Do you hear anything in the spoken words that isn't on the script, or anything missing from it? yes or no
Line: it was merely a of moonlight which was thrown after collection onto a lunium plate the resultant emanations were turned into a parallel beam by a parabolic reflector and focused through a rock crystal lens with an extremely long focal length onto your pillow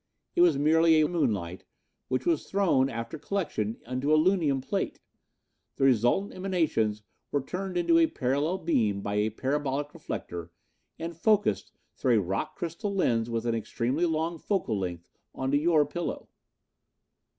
no